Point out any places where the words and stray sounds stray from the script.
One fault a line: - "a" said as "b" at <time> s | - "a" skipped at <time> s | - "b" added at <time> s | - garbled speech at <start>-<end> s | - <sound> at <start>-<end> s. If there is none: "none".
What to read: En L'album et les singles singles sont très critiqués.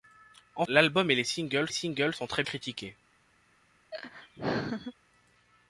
- laugh at 3.9-4.9 s